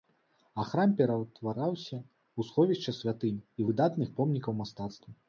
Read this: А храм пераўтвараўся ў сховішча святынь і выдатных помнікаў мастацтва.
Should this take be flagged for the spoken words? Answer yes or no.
no